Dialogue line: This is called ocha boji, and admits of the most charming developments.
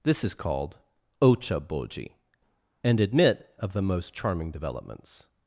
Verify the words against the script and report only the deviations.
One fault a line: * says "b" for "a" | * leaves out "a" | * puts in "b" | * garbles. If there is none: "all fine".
* says "admit" for "admits"